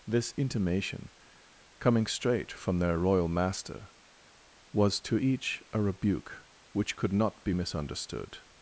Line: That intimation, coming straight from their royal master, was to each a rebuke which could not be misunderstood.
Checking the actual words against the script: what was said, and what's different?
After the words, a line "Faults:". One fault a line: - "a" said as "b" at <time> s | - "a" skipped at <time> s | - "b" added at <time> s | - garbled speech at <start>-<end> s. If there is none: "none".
This intimation, coming straight from their royal master, was to each a rebuke which could not be misunderstood.
Faults:
- "That" said as "This" at 0.1 s